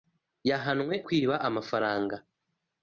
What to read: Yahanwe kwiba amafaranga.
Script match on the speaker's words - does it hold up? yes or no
yes